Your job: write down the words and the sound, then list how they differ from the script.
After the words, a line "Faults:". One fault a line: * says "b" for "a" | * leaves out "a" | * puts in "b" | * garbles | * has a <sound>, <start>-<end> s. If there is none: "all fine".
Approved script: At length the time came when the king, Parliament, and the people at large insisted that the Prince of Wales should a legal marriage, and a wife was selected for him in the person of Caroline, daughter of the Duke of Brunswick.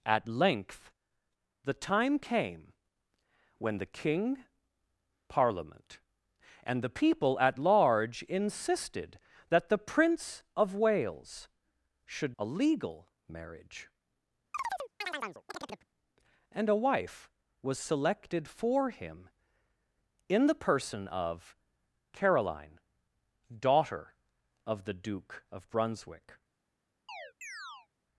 At length the time came when the king, Parliament, and the people at large insisted that the Prince of Wales should a legal marriage, and a wife was selected for him in the person of Caroline, daughter of the Duke of Brunswick.
Faults:
* has a chirp, 14.5-15.9 s
* has a chirp, 27.1-27.9 s